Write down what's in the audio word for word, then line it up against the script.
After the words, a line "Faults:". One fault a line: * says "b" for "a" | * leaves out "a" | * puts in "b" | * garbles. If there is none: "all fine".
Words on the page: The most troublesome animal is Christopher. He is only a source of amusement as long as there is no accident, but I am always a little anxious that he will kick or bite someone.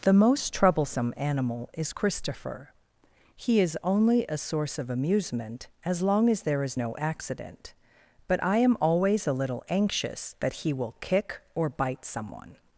The most troublesome animal is Christopher. He is only a source of amusement as long as there is no accident, but I am always a little anxious that he will kick or bite someone.
Faults:
all fine